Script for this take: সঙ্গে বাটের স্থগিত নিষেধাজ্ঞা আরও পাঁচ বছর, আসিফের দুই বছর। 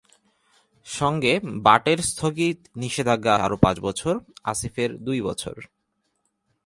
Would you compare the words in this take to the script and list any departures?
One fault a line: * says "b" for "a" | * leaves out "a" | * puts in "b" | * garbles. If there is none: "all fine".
all fine